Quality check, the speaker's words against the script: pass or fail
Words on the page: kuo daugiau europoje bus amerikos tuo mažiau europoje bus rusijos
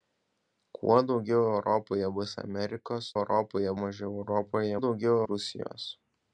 fail